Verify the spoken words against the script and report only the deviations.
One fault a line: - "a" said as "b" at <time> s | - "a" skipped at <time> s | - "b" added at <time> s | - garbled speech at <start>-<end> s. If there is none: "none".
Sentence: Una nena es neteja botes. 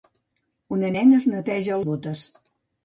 none